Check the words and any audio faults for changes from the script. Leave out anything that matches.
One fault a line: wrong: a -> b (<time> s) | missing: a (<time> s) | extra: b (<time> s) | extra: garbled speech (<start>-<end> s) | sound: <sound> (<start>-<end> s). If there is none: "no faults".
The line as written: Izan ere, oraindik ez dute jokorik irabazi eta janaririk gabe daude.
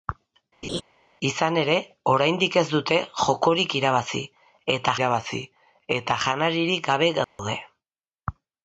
sound: laugh (0.6-0.8 s)
extra: irabazi eta (5.0 s)
sound: dropout (7.2-7.4 s)